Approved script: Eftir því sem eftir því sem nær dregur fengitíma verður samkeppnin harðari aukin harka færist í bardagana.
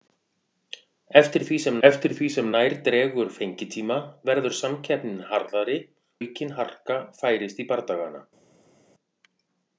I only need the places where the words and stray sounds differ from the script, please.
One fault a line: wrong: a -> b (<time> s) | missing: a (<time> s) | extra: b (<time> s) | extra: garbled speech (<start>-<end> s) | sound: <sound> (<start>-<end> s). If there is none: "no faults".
no faults